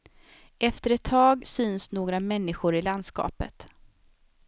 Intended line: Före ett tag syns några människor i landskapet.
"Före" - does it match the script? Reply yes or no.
no